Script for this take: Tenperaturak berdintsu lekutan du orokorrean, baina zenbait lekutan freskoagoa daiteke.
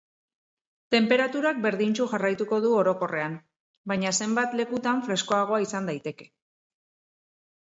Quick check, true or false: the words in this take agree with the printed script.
false